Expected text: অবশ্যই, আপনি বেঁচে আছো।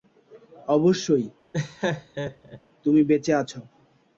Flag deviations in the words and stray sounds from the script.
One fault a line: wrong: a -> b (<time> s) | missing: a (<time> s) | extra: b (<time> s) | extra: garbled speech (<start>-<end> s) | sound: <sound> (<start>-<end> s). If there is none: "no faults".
sound: laugh (1.5-2.6 s)
wrong: আপনি -> তুমি (2.8 s)